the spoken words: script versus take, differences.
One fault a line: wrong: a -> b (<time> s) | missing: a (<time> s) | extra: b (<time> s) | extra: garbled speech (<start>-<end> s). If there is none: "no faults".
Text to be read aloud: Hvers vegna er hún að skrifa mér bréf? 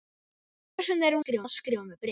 wrong: hún -> skrifa (1.2 s)